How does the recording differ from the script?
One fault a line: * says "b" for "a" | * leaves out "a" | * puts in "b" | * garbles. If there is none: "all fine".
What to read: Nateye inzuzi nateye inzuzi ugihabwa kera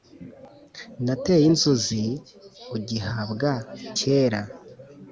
* leaves out "nateye inzuzi"